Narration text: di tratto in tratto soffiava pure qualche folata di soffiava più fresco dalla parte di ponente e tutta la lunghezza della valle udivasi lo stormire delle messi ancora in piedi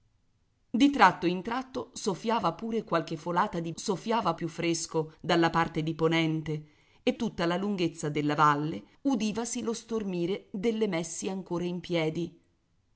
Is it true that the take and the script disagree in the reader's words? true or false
false